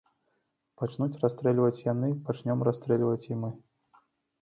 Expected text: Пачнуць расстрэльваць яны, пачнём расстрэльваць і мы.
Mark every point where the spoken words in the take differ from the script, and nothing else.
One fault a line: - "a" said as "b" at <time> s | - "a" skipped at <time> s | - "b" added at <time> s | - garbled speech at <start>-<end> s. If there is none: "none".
none